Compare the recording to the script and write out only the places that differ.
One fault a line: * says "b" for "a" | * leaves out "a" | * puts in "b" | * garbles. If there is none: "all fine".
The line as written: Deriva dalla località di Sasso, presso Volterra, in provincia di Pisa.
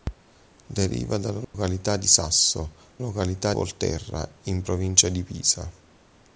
* says "località" for "presso"